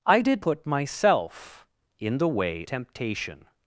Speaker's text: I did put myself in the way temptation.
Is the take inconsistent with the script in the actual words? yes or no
no